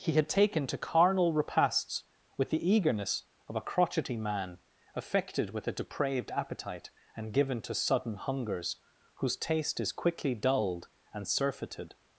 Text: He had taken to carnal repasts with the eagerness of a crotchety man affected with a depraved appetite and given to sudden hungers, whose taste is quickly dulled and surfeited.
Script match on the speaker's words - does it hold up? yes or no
yes